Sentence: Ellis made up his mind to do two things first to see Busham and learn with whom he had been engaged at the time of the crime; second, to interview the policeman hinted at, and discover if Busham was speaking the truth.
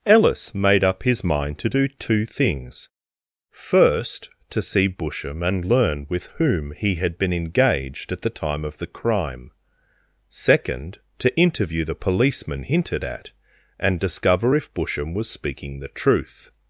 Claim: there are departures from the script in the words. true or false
false